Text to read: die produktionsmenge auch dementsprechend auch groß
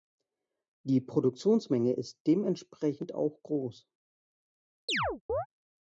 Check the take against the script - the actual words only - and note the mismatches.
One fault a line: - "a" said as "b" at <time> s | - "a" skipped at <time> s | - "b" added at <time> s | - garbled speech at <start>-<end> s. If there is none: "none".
- "auch" said as "ist" at 1.9 s